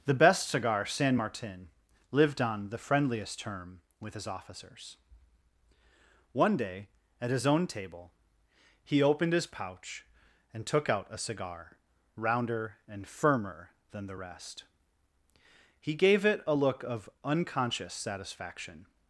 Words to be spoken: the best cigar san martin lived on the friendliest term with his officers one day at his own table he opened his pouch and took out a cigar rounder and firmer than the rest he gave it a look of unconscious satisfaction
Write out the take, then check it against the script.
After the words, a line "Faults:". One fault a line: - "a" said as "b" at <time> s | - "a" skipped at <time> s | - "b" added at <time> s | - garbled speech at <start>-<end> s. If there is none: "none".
the best cigar san martin lived on the friendliest term with his officers one day at his own table he opened his pouch and took out a cigar rounder and firmer than the rest he gave it a look of unconscious satisfaction
Faults:
none